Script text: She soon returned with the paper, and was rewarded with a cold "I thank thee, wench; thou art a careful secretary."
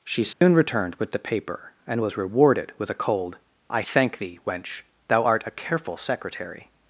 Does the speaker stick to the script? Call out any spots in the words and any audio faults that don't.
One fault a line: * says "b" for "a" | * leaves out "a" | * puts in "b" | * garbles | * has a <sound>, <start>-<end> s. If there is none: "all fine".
* has a dropout, 0.3-0.4 s